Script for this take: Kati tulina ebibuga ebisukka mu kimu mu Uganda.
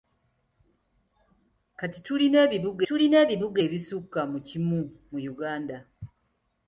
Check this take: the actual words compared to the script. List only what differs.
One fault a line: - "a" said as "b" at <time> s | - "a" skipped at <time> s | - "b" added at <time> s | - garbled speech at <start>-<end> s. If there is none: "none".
- "tulina ebibuga" added at 2.9 s